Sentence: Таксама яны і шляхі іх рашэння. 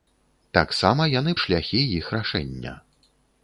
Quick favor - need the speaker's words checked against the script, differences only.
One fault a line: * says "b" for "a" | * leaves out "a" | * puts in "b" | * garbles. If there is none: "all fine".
all fine